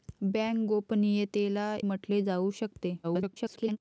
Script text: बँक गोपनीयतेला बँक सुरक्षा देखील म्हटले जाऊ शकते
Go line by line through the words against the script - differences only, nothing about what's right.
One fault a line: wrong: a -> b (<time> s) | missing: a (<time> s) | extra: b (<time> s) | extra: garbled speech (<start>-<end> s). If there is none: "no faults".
missing: बँक सुरक्षा देखील (1.8 s)
extra: garbled speech (3.0-3.8 s)